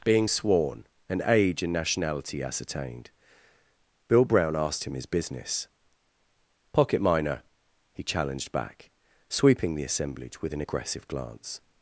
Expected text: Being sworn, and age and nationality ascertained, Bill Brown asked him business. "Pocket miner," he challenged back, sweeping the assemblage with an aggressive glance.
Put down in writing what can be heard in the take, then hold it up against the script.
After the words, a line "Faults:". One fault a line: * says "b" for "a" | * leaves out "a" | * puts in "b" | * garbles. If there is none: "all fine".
Being sworn, and age and nationality ascertained, Bill Brown asked him his business. "Pocket miner," he challenged back, sweeping the assemblage with an aggressive glance.
Faults:
* puts in "his"